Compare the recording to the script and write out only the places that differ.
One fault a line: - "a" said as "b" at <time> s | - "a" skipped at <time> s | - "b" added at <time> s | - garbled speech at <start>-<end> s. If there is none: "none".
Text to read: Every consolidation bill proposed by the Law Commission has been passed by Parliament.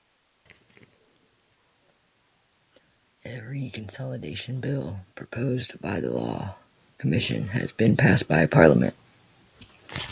none